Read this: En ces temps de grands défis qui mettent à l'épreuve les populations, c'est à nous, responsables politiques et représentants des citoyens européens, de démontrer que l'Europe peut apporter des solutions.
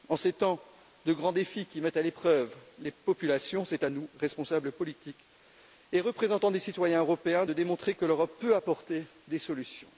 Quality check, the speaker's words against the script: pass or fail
pass